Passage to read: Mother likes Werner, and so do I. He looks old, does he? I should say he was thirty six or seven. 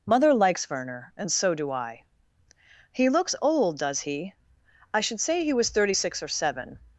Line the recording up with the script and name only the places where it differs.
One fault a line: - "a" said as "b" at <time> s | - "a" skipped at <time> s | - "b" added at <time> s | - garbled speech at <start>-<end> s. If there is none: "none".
none